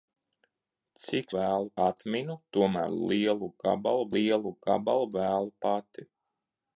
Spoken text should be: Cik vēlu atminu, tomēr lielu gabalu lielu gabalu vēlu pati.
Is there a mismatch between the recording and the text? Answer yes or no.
no